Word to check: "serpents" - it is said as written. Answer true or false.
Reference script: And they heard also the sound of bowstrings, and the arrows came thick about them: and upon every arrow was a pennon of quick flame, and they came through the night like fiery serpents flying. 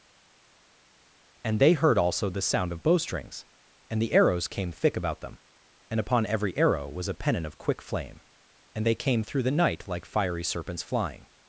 true